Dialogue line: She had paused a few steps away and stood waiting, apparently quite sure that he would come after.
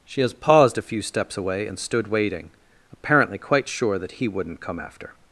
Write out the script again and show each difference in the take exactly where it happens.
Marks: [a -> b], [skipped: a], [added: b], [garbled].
She [had -> has] paused a few steps away and stood waiting, apparently quite sure that he [would -> wouldn't] come after.